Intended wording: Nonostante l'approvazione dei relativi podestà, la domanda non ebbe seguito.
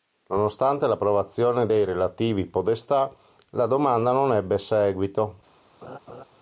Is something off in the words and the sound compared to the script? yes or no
yes